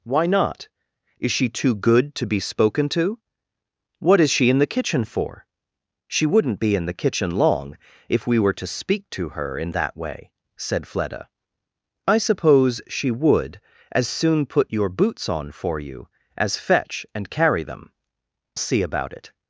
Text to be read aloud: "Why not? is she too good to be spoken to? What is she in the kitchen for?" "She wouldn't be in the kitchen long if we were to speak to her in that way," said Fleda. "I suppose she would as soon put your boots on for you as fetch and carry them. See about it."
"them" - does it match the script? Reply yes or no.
yes